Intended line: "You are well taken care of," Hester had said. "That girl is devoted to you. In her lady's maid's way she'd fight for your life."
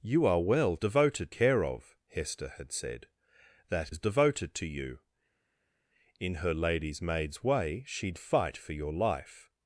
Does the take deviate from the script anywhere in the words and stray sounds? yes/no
yes